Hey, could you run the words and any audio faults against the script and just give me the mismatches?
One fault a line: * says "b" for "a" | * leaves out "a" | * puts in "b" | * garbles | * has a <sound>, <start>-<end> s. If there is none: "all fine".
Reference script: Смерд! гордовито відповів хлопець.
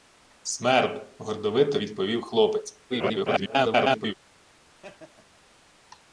* garbles
* has a laugh, 4.7-5.4 s